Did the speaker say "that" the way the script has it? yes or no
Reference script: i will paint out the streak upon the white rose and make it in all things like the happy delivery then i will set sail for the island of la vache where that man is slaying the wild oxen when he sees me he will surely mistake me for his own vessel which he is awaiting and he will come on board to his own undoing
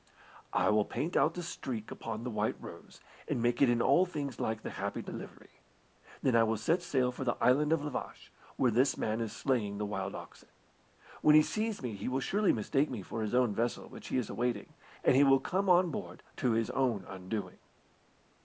no